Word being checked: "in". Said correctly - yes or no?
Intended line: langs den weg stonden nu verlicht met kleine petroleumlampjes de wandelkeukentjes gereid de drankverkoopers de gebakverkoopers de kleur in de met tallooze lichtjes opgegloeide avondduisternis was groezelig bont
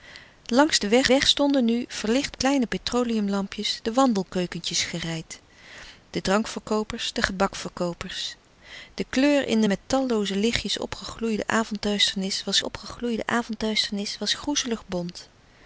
yes